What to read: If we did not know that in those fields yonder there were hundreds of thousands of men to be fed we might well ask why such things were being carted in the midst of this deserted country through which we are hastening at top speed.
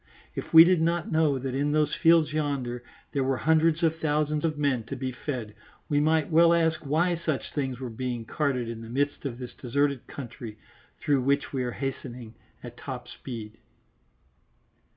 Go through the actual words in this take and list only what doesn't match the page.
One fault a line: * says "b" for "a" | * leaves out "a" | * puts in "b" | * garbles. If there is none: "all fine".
all fine